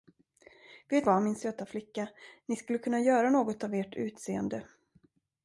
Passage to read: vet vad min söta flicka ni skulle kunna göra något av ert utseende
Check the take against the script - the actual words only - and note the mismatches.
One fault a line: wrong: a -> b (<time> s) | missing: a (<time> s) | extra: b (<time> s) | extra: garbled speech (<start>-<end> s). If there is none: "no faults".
no faults